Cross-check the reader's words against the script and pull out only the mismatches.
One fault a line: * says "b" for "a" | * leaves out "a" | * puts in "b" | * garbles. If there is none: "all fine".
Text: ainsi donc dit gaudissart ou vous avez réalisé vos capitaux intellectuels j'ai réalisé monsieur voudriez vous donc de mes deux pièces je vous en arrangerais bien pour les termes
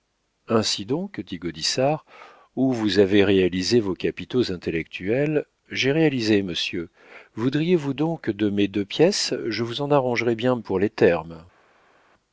all fine